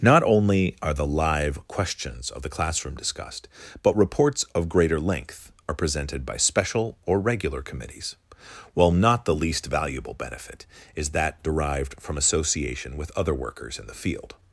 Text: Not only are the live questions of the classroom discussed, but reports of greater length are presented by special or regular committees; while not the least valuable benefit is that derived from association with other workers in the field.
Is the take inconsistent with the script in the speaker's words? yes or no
no